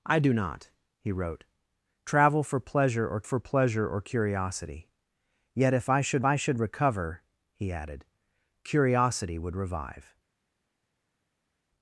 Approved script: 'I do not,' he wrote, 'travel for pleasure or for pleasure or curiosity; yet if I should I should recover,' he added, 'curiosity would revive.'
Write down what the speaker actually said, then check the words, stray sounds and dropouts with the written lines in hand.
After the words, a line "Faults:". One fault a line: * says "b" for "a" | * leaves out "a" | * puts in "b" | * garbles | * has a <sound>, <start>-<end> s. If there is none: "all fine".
'I do not,' he wrote, 'travel for pleasure or for pleasure or curiosity; yet if I should I should recover,' he added, 'curiosity would revive.'
Faults:
all fine